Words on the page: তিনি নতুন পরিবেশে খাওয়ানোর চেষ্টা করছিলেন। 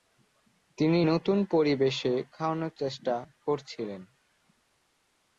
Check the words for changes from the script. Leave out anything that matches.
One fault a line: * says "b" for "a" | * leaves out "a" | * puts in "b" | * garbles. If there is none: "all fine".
all fine